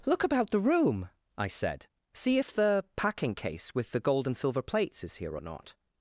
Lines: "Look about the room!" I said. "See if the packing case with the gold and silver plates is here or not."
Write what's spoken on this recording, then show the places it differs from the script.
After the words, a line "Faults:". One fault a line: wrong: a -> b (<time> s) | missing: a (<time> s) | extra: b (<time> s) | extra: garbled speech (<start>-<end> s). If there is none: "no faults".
"Look about the room!" I said. "See if the packing case with the gold and silver plates is here or not."
Faults:
no faults